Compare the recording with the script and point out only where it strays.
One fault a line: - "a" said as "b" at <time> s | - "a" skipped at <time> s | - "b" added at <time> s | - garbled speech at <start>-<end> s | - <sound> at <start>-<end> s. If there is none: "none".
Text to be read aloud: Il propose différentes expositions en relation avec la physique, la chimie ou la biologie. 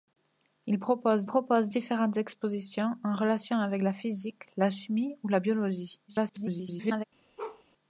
- "propose" added at 1.3 s
- garbled speech at 6.1-7.0 s
- bark at 7.4-7.6 s